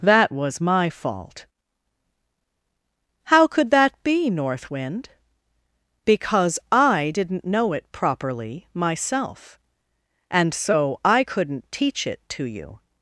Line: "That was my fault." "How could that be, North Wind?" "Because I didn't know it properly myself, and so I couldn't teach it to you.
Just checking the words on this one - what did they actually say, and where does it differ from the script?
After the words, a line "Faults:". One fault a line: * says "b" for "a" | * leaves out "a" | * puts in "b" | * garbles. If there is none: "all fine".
"That was my fault." "How could that be, North Wind?" "Because I didn't know it properly myself, and so I couldn't teach it to you.
Faults:
all fine